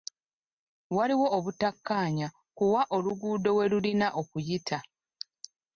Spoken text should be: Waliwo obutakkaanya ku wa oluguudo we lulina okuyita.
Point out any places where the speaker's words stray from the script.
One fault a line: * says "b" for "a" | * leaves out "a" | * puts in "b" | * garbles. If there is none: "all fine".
all fine